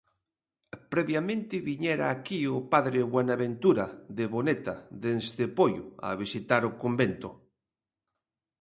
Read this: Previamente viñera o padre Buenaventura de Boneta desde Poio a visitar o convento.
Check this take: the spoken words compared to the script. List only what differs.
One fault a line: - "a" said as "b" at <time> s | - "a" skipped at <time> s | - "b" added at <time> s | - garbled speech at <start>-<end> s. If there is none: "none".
- "aquí" added at 2.1 s